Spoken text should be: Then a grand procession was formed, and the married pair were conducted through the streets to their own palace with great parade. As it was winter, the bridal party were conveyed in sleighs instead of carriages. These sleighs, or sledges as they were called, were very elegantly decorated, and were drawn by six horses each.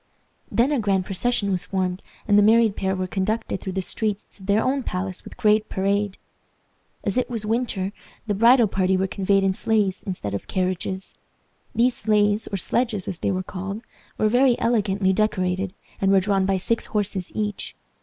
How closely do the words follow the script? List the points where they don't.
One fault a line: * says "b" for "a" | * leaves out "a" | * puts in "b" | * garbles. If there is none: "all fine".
all fine